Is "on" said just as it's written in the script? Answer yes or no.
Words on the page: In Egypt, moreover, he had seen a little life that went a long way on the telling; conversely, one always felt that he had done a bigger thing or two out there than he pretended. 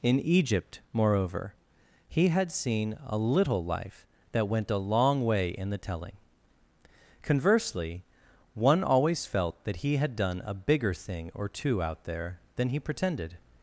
no